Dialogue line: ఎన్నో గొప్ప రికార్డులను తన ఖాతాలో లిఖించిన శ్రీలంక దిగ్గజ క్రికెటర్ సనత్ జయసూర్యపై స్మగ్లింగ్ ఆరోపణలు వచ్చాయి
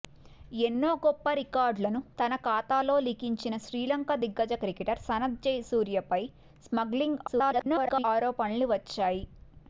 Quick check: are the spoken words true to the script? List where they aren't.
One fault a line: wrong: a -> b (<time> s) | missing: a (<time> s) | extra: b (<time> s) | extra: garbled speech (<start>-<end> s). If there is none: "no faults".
extra: garbled speech (7.3-8.0 s)